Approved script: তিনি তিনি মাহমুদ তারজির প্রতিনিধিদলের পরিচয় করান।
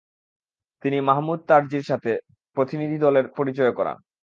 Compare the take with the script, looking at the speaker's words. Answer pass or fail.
fail